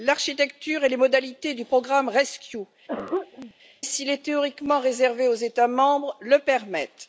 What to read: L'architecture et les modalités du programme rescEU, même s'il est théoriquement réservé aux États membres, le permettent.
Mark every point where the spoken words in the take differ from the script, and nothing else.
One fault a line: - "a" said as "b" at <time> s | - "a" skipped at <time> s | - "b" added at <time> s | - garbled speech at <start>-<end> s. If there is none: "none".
- "même" skipped at 2.6 s